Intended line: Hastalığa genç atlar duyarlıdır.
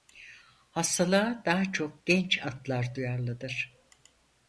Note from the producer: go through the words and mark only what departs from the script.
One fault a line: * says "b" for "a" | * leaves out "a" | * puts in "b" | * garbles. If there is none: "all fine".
* puts in "daha çok"